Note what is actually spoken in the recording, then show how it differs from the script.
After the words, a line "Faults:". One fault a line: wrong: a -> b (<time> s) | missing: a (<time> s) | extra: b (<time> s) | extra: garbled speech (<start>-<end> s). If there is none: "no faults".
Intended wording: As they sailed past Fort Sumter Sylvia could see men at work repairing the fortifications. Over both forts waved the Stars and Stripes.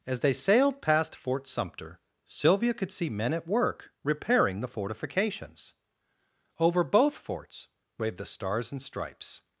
As they sailed past Fort Sumter Sylvia could see men at work repairing the fortifications. Over both forts waved the Stars and Stripes.
Faults:
no faults